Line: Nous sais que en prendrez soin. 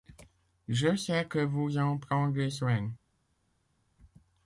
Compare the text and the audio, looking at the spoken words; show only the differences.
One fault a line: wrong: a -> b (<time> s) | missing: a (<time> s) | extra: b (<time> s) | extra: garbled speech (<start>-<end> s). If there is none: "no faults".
wrong: Nous -> Je (0.7 s)
extra: vous (1.4 s)